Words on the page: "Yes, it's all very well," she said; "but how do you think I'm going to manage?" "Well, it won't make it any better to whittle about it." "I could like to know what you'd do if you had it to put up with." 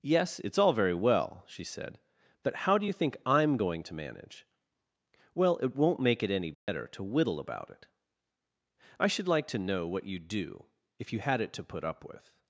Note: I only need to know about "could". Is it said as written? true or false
false